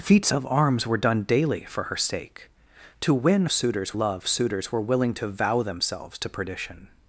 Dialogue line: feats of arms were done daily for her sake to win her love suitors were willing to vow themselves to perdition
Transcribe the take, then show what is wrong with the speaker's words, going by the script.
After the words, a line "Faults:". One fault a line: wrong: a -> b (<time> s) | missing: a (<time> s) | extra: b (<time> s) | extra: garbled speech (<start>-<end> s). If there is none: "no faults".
feats of arms were done daily for her sake to win suitors love suitors were willing to vow themselves to perdition
Faults:
wrong: her -> suitors (3.5 s)